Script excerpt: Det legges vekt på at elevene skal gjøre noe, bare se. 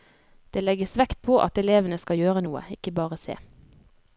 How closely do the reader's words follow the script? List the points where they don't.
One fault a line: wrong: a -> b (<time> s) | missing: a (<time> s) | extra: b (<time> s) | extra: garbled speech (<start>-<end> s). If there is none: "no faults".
extra: ikke (2.8 s)